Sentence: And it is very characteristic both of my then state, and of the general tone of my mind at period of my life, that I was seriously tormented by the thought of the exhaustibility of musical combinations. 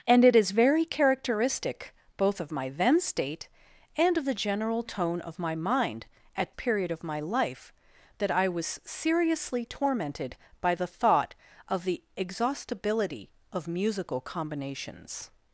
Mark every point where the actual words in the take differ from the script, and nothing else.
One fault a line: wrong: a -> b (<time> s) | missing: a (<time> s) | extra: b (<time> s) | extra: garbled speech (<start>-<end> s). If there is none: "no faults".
no faults